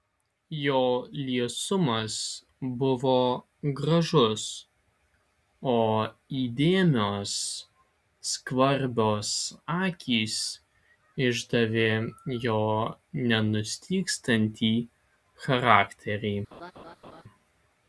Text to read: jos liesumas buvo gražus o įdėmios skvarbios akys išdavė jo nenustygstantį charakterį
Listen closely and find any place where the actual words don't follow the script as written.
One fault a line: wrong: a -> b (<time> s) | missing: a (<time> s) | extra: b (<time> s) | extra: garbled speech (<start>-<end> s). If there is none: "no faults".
wrong: jos -> jo (0.6 s)